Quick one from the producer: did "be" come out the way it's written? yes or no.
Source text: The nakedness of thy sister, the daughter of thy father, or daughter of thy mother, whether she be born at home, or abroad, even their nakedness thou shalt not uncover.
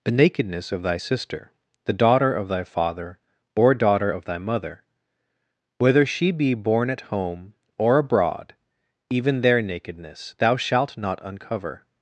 yes